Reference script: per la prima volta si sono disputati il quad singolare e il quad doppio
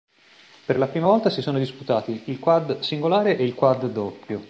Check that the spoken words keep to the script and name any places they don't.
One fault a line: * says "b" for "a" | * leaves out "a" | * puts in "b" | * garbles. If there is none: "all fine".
all fine